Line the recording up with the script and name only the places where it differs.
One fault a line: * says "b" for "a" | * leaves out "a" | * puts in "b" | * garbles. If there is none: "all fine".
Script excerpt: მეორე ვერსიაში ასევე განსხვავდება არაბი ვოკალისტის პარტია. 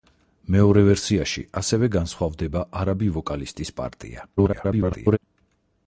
* garbles